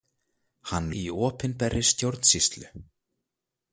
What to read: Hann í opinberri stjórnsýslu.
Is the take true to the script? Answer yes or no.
yes